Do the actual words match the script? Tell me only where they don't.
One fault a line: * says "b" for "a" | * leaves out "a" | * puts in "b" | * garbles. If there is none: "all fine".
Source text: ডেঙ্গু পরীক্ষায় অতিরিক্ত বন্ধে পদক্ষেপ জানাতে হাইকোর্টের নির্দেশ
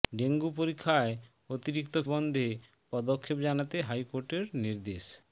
all fine